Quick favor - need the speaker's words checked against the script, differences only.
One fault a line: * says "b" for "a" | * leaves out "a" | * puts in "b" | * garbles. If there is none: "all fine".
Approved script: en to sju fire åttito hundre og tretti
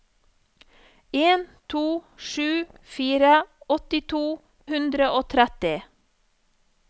all fine